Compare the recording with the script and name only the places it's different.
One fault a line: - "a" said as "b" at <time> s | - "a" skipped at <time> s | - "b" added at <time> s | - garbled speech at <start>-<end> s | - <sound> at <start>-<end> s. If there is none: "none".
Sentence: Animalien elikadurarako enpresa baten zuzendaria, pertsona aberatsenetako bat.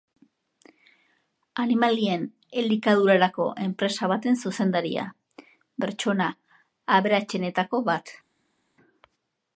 none